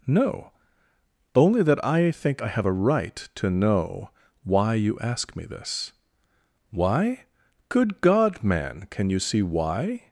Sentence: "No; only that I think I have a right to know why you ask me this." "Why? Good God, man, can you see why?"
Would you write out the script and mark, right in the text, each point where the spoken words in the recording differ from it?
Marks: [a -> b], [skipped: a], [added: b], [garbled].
"No; only that I think I have a right to know why you ask me this." "Why? Good God, man, can you see why?"